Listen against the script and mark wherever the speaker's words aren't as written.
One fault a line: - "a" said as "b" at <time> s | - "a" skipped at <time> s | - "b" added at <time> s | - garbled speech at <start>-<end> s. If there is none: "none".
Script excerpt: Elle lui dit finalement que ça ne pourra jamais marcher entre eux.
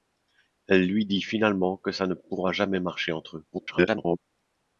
- garbled speech at 3.5-4.2 s